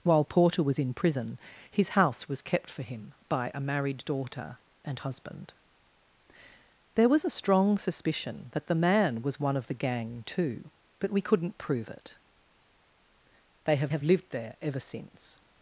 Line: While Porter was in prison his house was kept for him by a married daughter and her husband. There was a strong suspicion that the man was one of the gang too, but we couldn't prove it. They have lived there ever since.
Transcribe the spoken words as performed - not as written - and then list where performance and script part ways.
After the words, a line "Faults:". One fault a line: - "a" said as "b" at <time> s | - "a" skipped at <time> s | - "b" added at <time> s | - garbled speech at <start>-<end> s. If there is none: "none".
While Porter was in prison his house was kept for him by a married daughter and husband. There was a strong suspicion that the man was one of the gang too, but we couldn't prove it. They have have lived there ever since.
Faults:
- "her" skipped at 5.0 s
- "have" added at 13.9 s